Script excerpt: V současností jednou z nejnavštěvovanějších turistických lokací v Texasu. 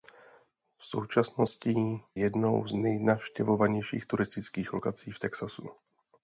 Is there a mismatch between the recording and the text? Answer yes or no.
no